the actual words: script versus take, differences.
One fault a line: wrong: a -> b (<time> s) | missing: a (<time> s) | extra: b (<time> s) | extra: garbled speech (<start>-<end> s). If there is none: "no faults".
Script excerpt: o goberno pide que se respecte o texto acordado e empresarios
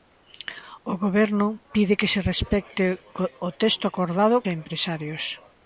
no faults